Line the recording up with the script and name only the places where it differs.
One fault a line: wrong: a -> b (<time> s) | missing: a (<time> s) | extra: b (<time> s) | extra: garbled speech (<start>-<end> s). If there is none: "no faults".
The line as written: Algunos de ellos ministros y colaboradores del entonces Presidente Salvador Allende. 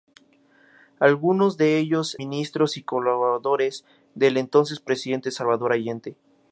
no faults